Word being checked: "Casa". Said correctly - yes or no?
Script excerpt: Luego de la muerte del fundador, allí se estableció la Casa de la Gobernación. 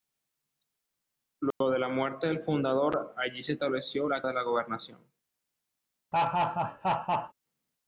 no